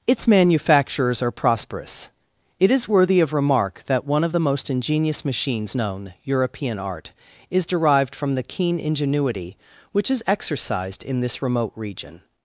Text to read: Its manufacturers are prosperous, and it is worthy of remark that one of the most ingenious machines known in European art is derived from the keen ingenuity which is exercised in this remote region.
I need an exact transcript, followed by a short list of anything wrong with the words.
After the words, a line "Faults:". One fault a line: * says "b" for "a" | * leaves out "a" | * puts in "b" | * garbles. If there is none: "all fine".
Its manufacturers are prosperous, it is worthy of remark that one of the most ingenious machines known European art is derived from the keen ingenuity which is exercised in this remote region.
Faults:
* leaves out "and"
* leaves out "in"